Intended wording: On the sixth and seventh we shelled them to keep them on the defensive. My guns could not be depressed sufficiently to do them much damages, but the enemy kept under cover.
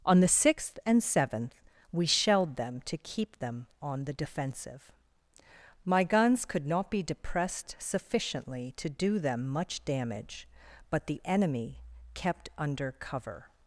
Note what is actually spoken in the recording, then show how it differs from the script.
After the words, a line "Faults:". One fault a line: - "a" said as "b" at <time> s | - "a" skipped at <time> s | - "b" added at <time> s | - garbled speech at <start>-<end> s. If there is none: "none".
On the sixth and seventh we shelled them to keep them on the defensive. My guns could not be depressed sufficiently to do them much damage, but the enemy kept under cover.
Faults:
- "damages" said as "damage" at 9.9 s